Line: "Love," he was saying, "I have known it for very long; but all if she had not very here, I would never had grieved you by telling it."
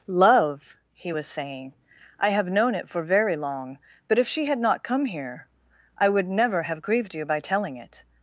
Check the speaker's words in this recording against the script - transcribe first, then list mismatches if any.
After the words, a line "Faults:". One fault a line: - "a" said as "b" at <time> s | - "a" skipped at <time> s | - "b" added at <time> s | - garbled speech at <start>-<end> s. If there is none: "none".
"Love," he was saying, "I have known it for very long; but if she had not come here, I would never have grieved you by telling it."
Faults:
- "all" skipped at 4.2 s
- "very" said as "come" at 4.8 s
- "had" said as "have" at 6.6 s